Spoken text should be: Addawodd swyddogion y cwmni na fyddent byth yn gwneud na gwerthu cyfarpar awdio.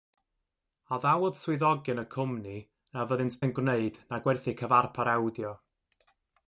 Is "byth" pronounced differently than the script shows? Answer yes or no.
yes